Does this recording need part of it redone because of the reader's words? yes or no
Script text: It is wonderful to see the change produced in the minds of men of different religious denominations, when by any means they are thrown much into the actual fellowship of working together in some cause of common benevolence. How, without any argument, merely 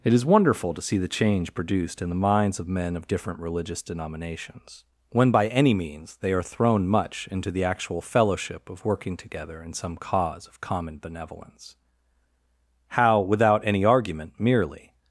no